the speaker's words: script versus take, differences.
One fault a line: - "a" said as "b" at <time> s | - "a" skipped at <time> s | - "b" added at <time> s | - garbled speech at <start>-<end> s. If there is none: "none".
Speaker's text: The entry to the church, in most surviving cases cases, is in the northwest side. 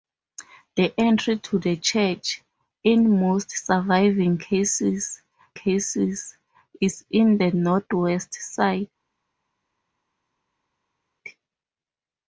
none